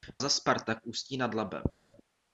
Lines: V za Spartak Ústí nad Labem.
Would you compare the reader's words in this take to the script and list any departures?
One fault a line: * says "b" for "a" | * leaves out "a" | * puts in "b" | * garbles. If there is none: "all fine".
all fine